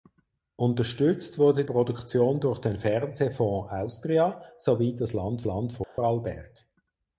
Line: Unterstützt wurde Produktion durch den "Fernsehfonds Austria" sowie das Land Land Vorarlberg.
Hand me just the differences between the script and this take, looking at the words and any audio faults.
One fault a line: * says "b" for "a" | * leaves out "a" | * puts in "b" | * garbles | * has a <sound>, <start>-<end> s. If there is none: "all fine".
* has a dropout, 5.8-6.0 s